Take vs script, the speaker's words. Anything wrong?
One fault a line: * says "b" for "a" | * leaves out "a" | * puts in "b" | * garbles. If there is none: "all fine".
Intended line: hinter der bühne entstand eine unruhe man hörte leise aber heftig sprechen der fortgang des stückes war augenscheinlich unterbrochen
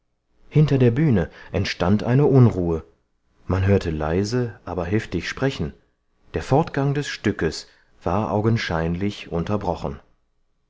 all fine